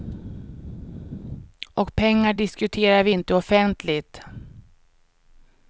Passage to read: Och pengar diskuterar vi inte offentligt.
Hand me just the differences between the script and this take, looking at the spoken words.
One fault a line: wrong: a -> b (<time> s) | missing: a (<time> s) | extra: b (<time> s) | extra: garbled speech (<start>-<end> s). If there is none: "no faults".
no faults